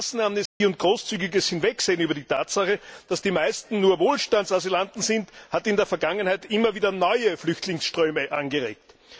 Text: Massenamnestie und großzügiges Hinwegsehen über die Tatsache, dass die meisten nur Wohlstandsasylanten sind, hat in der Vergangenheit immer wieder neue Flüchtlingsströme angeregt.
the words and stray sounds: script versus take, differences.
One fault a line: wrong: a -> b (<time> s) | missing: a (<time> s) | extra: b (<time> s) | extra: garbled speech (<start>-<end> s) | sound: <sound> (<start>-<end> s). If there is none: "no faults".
sound: dropout (0.5-0.6 s)